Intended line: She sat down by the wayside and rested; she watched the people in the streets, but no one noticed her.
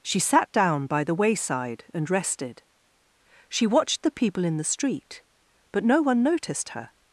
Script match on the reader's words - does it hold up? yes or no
no